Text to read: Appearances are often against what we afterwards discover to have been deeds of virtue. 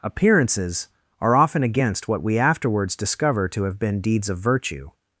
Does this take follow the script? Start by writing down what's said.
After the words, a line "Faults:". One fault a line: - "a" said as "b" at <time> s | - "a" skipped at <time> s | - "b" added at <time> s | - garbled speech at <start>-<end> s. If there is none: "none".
Appearances are often against what we afterwards discover to have been deeds of virtue.
Faults:
none